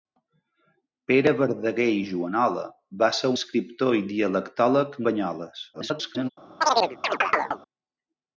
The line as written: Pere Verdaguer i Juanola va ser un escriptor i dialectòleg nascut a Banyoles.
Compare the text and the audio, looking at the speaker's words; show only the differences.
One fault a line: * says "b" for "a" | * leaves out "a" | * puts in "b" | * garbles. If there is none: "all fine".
* leaves out "un"
* leaves out "nascut"
* garbles